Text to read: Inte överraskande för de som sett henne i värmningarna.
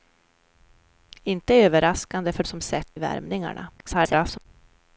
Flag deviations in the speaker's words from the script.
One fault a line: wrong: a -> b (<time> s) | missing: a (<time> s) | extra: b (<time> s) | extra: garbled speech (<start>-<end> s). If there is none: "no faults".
missing: de (2.4 s)
missing: henne (3.0 s)
extra: garbled speech (3.8-4.5 s)